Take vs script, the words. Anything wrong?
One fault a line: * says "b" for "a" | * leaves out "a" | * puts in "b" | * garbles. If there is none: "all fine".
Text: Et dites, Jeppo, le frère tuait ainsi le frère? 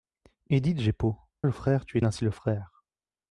all fine